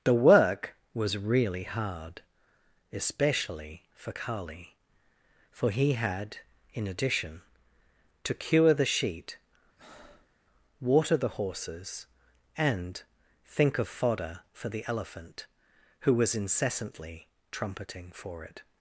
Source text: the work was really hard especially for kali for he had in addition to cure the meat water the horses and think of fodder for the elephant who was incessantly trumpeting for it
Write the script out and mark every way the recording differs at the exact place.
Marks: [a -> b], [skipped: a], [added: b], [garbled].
the work was really hard especially for kali for he had in addition to cure the [meat -> sheet] water the horses and think of fodder for the elephant who was incessantly trumpeting for it